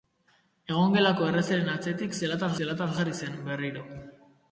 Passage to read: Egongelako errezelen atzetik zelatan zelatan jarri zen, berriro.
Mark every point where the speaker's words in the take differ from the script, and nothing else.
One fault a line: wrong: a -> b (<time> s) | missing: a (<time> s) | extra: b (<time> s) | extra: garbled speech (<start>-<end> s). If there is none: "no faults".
no faults